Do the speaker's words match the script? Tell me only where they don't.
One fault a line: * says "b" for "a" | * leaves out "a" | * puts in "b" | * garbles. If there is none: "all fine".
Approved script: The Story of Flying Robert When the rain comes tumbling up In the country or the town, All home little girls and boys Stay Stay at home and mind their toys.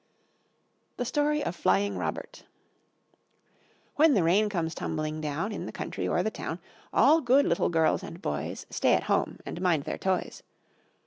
* says "down" for "up"
* says "good" for "home"
* leaves out "Stay"